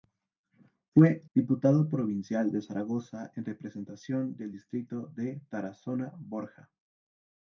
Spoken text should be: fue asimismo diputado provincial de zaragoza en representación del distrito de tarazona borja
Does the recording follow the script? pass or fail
fail